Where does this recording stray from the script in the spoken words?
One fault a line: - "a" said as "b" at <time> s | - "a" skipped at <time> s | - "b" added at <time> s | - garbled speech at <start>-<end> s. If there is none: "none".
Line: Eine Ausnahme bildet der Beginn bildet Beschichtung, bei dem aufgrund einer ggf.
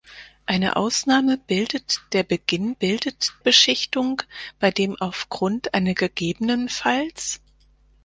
none